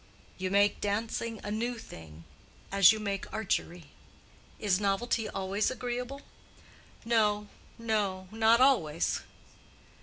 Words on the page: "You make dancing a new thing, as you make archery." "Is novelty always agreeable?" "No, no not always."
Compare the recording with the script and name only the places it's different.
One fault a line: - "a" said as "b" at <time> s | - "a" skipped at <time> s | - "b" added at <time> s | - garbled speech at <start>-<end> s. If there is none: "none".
none